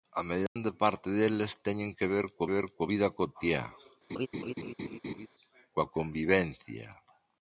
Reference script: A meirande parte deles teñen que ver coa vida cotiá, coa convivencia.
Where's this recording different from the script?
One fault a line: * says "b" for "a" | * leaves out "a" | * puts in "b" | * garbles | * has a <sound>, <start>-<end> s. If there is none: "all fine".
* has a dropout, 0.5-0.6 s
* puts in "ver coa"
* has a laugh, 4.1-5.3 s